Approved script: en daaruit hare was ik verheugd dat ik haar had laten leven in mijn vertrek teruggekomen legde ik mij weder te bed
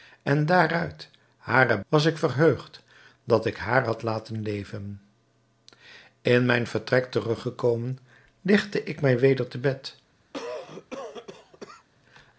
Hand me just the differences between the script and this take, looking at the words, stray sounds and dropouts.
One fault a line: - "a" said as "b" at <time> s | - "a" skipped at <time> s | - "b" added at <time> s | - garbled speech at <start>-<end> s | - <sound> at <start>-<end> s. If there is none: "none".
- cough at 10.3-11.9 s